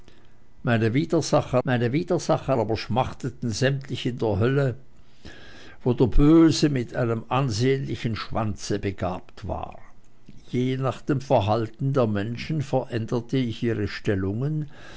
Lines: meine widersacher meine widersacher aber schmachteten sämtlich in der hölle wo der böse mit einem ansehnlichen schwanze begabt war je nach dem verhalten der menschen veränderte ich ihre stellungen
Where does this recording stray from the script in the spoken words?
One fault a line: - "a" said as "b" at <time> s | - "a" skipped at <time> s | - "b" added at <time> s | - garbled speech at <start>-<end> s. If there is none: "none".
none